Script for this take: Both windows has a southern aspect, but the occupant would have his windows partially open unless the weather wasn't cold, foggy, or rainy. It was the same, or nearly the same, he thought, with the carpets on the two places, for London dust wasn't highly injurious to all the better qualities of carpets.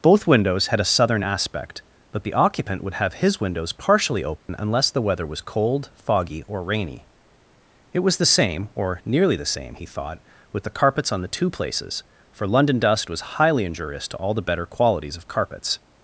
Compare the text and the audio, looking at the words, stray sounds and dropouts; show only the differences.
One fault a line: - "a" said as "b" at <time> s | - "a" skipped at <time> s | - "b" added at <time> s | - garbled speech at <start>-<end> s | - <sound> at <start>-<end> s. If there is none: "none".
- "has" said as "had" at 0.7 s
- dropout at 4.4-4.5 s
- "wasn't" said as "was" at 5.3 s
- "wasn't" said as "was" at 13.1 s